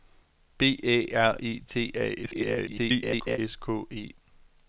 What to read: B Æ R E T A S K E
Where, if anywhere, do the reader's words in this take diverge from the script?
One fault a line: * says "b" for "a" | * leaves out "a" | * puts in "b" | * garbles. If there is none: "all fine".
* garbles